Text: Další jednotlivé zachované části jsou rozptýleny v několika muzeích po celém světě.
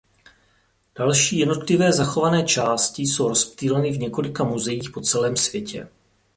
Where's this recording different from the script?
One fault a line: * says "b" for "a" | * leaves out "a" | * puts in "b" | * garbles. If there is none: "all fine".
all fine